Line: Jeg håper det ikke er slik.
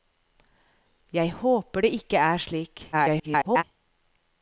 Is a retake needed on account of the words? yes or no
yes